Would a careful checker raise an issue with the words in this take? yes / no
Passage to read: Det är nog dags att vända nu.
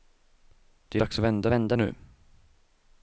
yes